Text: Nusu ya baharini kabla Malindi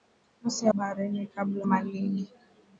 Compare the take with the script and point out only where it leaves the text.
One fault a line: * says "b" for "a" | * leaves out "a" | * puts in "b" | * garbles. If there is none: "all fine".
all fine